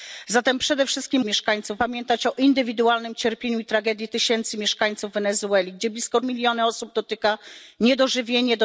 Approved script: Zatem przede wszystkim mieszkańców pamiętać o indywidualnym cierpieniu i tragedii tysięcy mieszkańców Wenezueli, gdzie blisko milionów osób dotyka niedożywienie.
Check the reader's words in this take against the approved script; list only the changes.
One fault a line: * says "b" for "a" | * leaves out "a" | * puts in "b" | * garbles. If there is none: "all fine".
all fine